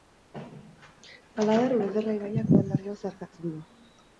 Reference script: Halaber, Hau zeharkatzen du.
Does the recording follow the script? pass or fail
fail